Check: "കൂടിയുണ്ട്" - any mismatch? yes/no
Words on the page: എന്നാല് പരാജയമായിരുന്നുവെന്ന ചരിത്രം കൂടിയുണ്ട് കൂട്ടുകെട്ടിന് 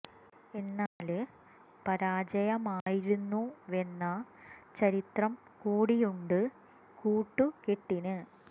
no